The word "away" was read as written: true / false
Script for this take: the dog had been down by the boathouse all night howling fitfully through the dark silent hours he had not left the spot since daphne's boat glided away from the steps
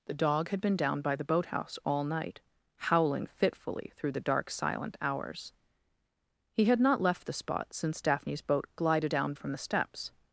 false